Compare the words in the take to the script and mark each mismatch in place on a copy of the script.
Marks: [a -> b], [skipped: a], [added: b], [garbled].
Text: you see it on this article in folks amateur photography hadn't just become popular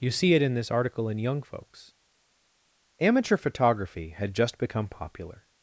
you see it [on -> in] this article in [added: young] folks amateur photography [hadn't -> had] just become popular